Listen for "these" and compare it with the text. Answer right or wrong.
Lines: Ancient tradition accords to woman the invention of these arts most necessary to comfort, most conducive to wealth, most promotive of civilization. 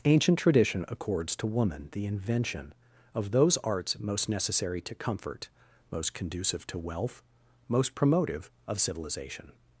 wrong